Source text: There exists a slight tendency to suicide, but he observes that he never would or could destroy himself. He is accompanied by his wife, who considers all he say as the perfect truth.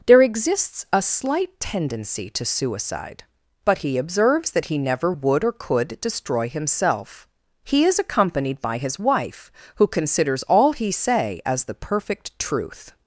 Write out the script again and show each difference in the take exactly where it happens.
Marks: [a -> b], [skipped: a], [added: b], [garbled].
There exists a slight tendency to suicide, but he observes that he never would or could destroy himself. He is accompanied by his wife, who considers all he say as the perfect truth.